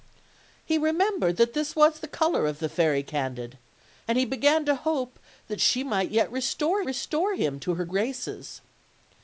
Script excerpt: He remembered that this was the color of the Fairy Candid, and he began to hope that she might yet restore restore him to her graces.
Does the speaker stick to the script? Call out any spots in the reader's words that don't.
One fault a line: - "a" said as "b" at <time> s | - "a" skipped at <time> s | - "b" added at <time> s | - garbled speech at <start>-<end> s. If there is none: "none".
none